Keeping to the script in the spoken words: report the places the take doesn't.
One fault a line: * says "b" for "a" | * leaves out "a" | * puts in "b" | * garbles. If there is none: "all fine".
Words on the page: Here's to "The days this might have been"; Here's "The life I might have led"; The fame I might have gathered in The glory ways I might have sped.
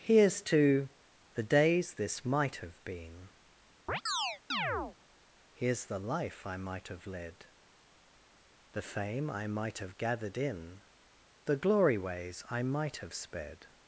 all fine